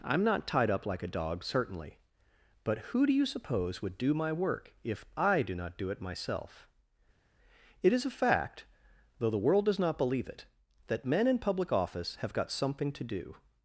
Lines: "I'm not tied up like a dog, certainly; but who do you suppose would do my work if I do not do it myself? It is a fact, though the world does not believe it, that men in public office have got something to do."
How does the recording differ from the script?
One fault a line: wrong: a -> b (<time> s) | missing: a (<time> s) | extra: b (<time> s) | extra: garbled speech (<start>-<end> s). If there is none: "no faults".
no faults